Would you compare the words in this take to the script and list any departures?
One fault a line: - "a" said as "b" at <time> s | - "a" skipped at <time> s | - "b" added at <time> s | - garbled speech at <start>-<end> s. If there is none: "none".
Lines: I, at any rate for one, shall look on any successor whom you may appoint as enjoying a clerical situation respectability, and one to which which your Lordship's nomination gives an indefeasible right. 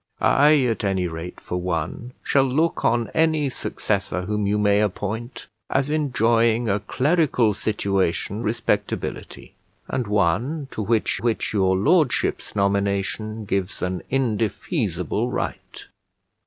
none